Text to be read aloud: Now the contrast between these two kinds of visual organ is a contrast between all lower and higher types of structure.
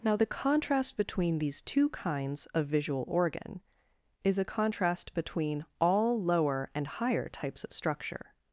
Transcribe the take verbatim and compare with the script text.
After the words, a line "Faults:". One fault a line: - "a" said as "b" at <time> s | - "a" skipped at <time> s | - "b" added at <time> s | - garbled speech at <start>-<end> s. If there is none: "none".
Now the contrast between these two kinds of visual organ is a contrast between all lower and higher types of structure.
Faults:
none